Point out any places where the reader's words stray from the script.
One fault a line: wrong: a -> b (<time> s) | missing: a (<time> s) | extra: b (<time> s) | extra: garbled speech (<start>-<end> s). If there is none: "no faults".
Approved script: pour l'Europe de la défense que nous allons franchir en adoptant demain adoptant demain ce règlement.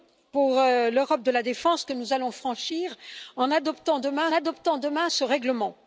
no faults